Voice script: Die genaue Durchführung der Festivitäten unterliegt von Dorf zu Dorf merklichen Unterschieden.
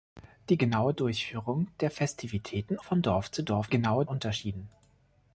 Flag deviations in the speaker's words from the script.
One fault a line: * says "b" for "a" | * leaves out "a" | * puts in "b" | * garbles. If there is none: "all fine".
* leaves out "unterliegt"
* says "genaue" for "merklichen"